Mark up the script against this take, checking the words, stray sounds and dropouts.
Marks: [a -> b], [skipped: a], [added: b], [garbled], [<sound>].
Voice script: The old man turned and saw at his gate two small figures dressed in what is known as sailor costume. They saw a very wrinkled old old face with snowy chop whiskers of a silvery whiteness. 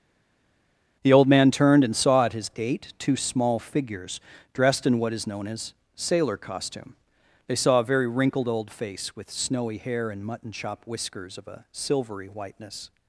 The old man turned and saw at his gate two small figures dressed in what is known as sailor costume. They saw a very wrinkled old [skipped: old] face with snowy [added: hair and mutton] chop whiskers of a silvery whiteness.